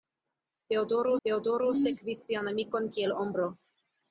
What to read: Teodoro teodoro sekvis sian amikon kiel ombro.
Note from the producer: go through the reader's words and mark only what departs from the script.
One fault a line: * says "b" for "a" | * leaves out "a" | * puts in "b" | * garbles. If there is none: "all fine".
all fine